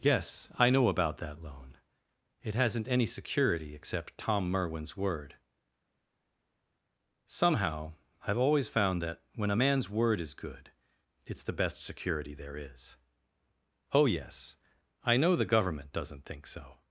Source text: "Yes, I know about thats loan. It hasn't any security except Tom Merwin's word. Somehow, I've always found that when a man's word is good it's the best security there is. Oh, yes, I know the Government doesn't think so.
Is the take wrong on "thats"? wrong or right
wrong